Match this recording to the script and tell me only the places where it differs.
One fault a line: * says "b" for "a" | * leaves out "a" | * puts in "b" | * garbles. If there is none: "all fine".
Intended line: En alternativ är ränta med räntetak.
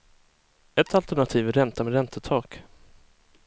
* says "Ett" for "En"